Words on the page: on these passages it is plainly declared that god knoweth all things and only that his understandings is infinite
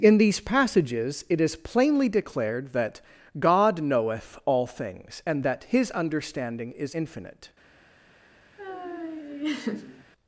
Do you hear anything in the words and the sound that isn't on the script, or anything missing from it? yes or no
yes